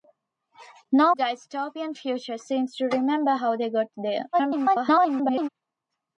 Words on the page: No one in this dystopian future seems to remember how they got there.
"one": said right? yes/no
no